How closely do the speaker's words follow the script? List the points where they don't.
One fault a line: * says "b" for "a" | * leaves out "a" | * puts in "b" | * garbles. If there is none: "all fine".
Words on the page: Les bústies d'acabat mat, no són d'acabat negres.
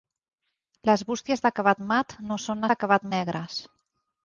all fine